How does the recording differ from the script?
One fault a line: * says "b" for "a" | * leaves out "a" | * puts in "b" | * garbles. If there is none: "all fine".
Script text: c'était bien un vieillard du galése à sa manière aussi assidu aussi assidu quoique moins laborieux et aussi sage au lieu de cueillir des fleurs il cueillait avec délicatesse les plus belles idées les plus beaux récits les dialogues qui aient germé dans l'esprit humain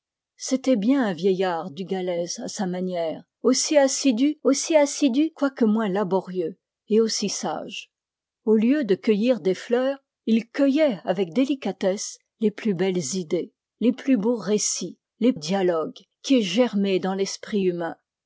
all fine